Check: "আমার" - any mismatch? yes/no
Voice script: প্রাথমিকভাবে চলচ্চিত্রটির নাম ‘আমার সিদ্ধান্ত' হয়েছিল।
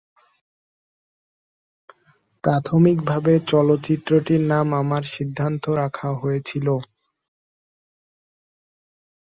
no